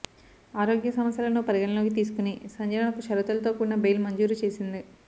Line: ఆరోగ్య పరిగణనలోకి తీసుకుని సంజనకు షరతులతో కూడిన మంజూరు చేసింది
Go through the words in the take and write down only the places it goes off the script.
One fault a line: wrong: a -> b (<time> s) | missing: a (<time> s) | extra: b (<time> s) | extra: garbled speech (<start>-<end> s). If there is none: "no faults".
extra: సమస్యలను (0.9 s)
extra: బెయిల్ (3.8 s)